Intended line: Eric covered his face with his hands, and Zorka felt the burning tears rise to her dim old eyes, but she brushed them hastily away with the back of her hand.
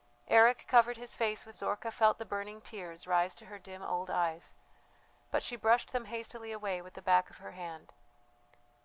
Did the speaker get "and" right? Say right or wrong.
wrong